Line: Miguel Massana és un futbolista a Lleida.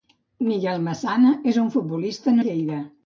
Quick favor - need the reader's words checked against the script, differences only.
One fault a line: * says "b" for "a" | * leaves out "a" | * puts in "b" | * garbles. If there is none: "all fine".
all fine